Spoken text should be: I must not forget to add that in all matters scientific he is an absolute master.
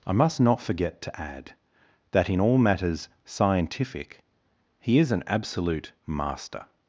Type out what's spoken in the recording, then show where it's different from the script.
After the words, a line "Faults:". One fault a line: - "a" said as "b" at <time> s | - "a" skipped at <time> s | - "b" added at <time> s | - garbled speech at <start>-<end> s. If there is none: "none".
I must not forget to add that in all matters scientific he is an absolute master.
Faults:
none